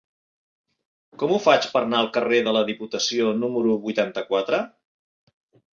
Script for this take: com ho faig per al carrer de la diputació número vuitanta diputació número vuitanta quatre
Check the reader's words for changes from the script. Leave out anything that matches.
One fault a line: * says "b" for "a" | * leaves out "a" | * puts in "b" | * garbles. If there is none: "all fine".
* puts in "anar"
* leaves out "diputació número vuitanta"